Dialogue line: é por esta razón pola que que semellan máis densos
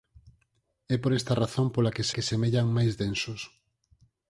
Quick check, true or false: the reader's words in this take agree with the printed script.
true